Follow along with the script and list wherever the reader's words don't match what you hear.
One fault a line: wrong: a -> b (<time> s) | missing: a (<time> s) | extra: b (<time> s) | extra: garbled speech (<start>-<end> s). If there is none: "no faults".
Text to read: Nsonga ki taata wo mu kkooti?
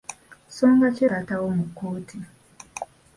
no faults